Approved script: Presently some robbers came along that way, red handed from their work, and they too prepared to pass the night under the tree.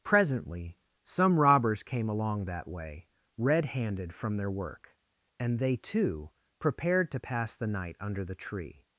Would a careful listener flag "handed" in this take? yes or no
no